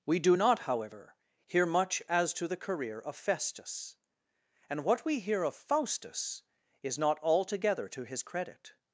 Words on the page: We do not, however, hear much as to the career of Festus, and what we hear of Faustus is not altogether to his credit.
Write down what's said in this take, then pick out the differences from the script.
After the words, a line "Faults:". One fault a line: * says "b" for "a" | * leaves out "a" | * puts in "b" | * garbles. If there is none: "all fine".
We do not, however, hear much as to the career of Festus, and what we hear of Faustus is not altogether to his credit.
Faults:
all fine